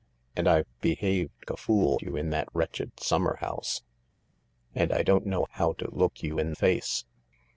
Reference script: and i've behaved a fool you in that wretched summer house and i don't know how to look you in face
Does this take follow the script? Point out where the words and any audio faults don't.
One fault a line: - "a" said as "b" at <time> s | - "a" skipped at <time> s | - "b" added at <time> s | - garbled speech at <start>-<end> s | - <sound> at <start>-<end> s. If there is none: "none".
none